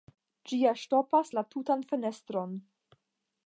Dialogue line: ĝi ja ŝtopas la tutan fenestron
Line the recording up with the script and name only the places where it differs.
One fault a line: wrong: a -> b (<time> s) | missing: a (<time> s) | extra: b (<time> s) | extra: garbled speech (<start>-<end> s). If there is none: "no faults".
no faults